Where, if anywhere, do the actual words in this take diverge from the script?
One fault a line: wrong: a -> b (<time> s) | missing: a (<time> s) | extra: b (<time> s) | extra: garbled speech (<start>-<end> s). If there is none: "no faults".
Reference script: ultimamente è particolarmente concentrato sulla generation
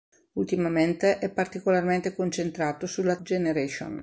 no faults